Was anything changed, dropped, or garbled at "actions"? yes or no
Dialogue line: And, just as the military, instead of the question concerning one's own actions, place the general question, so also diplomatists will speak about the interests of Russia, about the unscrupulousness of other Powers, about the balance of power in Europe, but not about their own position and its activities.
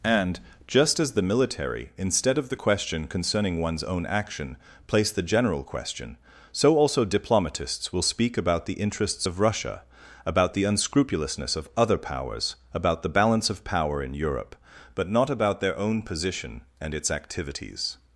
yes